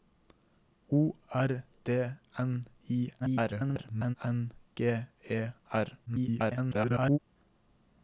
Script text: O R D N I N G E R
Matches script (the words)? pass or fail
fail